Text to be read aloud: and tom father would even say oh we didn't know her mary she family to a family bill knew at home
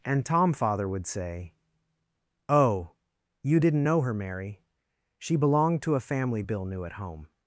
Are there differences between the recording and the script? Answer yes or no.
yes